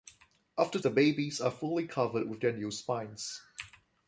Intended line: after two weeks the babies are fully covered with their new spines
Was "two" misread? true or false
true